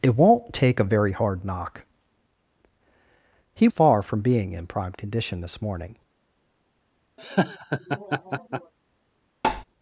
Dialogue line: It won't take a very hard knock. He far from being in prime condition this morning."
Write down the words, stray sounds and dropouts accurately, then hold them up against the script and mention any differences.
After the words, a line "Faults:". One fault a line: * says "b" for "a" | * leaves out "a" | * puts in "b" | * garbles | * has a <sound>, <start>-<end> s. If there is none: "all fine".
It won't take a very hard knock. He far from being in prime condition this morning."
Faults:
* has a laugh, 7.2-8.7 s
* has a tap, 9.4-9.6 s